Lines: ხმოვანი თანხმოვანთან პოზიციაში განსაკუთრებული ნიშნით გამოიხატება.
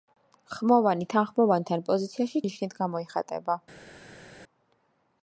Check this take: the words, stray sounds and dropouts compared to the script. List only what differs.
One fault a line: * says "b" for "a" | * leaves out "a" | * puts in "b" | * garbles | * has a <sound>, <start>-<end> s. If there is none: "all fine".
* leaves out "განსაკუთრებული"